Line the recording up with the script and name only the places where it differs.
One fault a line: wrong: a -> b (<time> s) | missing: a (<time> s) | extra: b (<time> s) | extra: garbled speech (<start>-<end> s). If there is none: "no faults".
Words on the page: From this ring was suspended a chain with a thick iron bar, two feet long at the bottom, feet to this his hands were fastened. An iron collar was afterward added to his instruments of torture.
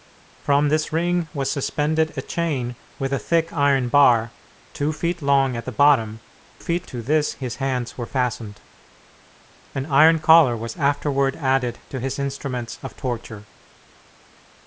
no faults